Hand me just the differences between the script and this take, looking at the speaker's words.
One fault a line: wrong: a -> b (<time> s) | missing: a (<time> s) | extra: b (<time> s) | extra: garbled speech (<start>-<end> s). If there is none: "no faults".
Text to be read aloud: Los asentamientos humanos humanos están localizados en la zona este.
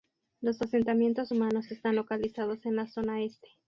missing: humanos (1.7 s)